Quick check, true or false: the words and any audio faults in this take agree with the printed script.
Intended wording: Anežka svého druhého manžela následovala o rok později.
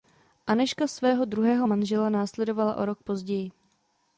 true